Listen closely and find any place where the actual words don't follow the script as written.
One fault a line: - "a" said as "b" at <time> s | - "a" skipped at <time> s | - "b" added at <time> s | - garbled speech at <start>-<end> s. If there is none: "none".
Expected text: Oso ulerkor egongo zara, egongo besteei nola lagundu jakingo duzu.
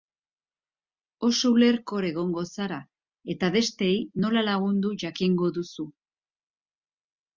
- "egongo" said as "eta" at 3.4 s